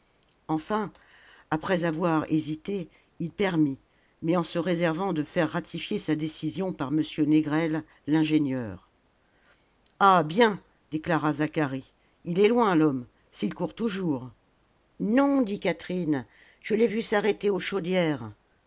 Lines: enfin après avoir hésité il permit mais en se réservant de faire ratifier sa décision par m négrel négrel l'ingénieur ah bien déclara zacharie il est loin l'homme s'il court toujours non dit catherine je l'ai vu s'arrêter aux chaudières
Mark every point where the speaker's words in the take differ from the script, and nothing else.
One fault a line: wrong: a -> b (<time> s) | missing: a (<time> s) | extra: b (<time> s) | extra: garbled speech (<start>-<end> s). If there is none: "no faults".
missing: négrel (7.8 s)